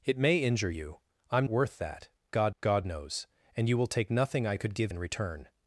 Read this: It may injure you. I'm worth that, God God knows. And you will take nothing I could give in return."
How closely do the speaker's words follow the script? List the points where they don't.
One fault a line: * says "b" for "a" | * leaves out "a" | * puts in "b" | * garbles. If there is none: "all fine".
all fine